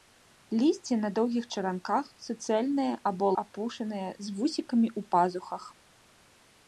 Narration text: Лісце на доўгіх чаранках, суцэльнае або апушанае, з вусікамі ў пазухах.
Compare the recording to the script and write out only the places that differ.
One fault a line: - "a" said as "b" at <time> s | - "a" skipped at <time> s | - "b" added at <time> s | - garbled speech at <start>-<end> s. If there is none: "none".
none